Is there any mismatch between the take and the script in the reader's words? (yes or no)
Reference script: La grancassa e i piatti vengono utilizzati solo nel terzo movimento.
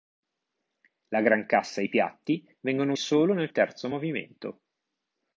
yes